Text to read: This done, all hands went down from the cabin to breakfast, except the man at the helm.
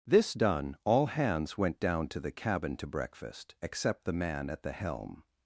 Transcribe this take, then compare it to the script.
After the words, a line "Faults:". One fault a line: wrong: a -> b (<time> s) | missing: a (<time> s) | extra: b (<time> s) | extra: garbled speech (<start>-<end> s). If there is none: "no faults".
This done, all hands went down to the cabin to breakfast, except the man at the helm.
Faults:
wrong: from -> to (2.1 s)